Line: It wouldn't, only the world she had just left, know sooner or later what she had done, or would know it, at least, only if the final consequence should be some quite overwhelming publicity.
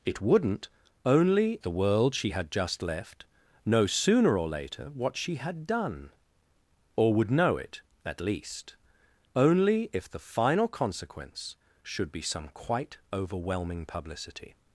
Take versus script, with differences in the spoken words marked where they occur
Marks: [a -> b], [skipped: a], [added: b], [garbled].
It wouldn't, only the world she had just left, know sooner or later what she had done, or would know it, at least, only if the final consequence should be some quite overwhelming publicity.